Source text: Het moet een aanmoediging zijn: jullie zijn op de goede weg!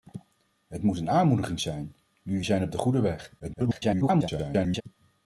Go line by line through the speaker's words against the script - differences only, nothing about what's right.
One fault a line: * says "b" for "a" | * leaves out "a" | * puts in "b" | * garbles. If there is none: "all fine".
* garbles